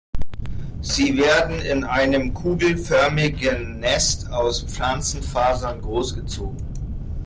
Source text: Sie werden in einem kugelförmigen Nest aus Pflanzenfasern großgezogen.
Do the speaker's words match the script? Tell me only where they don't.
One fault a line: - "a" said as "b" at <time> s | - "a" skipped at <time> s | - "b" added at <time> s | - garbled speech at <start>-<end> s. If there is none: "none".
none